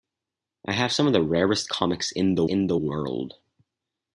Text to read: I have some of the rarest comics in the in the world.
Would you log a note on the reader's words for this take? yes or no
no